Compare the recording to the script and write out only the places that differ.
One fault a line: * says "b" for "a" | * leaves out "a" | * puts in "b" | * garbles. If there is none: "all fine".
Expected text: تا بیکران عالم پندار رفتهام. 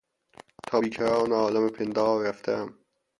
all fine